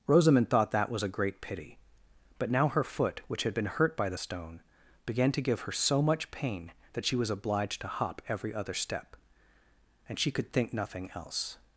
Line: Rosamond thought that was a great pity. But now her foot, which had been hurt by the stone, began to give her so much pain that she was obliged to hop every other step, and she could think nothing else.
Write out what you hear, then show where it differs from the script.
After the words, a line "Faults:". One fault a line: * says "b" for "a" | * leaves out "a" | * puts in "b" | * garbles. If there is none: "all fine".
Rosamond thought that was a great pity. But now her foot, which had been hurt by the stone, began to give her so much pain that she was obliged to hop every other step, and she could think nothing else.
Faults:
all fine